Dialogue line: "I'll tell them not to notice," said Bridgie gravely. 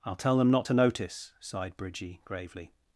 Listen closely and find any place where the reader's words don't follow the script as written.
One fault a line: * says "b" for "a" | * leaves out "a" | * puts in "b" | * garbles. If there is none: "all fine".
* says "sighed" for "said"